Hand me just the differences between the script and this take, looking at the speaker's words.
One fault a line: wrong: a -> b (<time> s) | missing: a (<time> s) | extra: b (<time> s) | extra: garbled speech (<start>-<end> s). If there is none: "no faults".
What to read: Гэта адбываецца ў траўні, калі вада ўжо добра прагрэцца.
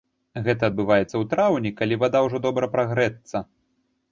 no faults